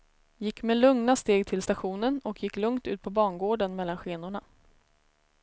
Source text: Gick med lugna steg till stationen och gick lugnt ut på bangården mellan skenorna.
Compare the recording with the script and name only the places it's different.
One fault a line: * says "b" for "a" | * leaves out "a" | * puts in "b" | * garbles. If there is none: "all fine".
all fine